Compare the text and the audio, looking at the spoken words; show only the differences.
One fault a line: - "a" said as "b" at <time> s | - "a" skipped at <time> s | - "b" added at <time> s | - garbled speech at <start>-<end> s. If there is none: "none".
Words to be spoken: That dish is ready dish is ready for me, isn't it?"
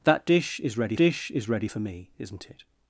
none